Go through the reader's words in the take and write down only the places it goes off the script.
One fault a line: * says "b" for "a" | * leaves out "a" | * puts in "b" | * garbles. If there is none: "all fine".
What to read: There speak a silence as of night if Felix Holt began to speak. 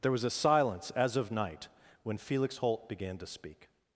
* says "was" for "speak"
* says "when" for "if"